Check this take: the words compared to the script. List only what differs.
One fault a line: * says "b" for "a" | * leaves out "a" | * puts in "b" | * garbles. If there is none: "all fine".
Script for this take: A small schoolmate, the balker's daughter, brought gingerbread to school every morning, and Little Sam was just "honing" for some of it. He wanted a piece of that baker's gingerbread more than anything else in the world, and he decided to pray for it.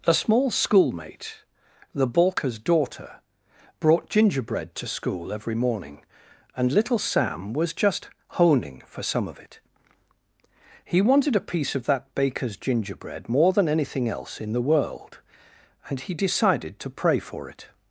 all fine